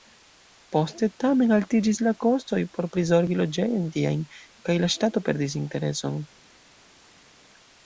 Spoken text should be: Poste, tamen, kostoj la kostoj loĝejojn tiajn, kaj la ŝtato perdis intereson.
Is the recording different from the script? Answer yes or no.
yes